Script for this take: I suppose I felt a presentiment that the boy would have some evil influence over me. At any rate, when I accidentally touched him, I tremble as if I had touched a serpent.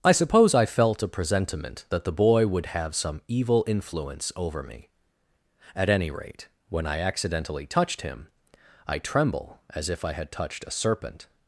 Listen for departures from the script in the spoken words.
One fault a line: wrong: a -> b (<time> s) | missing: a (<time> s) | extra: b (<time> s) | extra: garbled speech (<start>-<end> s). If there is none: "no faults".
no faults